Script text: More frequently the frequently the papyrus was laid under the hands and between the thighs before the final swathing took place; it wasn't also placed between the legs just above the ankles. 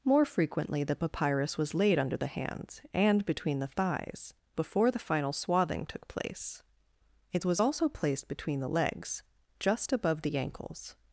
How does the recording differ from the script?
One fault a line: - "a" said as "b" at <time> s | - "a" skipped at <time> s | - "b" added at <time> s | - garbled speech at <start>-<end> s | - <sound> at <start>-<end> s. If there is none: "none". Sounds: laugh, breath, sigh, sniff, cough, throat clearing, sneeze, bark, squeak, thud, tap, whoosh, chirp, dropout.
- "frequently the" skipped at 0.9 s
- "wasn't" said as "was" at 7.5 s